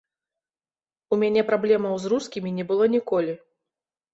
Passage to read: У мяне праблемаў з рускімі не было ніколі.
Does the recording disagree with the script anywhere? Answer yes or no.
no